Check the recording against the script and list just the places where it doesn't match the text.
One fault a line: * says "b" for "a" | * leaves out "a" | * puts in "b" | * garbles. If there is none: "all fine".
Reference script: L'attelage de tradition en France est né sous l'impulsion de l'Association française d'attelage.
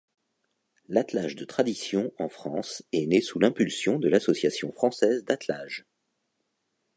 all fine